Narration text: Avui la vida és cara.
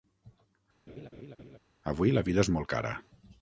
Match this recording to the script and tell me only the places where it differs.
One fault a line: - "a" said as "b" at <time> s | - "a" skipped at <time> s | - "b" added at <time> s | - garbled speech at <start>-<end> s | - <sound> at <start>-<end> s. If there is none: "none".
- laugh at 0.9-1.6 s
- "molt" added at 2.6 s